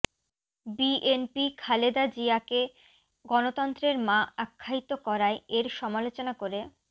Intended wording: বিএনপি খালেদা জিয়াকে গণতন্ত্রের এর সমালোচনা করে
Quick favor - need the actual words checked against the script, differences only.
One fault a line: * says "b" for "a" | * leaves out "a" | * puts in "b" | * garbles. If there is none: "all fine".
* puts in "মা আখ্যায়িত করায়"